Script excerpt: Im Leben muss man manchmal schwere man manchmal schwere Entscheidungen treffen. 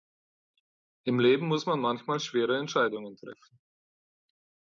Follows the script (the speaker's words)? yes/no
no